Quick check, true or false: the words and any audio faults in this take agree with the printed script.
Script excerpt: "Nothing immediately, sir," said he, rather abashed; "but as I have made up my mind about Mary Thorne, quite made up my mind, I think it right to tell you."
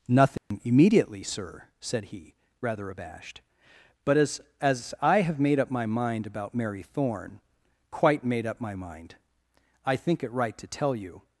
false